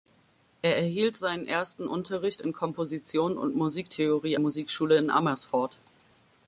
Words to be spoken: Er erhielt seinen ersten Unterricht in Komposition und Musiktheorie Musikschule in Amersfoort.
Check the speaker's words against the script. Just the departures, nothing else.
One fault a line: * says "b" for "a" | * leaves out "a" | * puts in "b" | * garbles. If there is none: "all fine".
all fine